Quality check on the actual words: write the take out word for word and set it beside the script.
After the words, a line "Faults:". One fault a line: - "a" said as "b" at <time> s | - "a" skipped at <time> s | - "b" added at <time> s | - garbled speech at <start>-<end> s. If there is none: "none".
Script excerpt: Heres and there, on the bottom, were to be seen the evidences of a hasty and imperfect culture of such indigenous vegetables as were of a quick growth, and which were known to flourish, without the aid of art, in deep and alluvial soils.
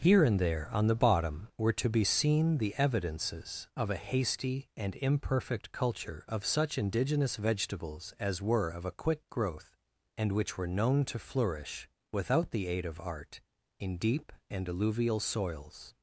Here and there, on the bottom, were to be seen the evidences of a hasty and imperfect culture of such indigenous vegetables as were of a quick growth, and which were known to flourish, without the aid of art, in deep and alluvial soils.
Faults:
- "Heres" said as "Here" at 0.0 s